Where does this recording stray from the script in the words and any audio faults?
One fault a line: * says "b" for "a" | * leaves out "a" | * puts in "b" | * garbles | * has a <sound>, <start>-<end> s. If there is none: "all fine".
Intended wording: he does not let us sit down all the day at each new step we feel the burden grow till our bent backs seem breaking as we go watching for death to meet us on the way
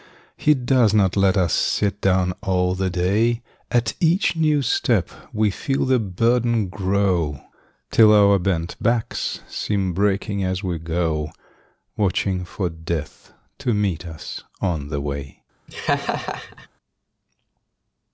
* has a laugh, 15.7-16.7 s